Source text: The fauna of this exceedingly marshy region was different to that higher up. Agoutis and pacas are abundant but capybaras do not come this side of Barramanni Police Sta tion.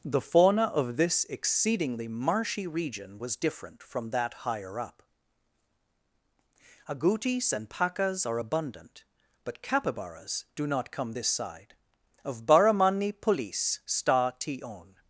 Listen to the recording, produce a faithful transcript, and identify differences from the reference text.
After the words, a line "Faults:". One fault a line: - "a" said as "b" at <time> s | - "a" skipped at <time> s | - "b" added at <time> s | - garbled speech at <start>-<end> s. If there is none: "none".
The fauna of this exceedingly marshy region was different from that higher up. Agoutis and pacas are abundant but capybaras do not come this side of Barramanni Police Sta tion.
Faults:
- "to" said as "from" at 3.8 s